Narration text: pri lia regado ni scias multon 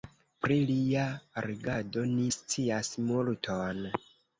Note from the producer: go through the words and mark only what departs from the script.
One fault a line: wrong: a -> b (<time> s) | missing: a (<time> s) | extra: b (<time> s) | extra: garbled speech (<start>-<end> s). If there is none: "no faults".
no faults